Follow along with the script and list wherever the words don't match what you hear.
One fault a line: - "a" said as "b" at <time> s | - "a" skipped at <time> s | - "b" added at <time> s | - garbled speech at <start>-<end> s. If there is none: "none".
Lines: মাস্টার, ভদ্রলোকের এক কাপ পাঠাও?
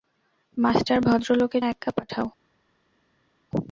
none